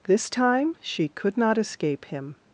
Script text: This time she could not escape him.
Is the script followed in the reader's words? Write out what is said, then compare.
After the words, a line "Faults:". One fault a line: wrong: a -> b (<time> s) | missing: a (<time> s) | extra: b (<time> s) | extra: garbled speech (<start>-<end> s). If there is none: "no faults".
This time she could not escape him.
Faults:
no faults